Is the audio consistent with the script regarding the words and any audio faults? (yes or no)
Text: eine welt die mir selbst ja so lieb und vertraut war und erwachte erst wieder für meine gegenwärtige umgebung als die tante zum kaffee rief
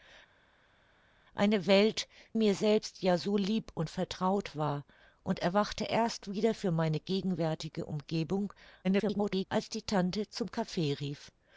no